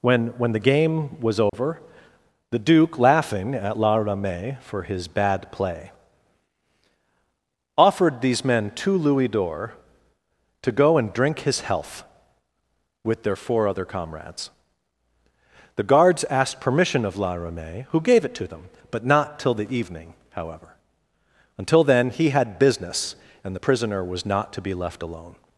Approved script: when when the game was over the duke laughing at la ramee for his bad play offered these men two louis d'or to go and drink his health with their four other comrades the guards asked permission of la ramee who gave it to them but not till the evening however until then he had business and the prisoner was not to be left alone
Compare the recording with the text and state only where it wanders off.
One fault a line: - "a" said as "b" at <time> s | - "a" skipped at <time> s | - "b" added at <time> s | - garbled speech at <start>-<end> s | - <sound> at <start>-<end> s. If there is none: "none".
- dropout at 1.5-1.5 s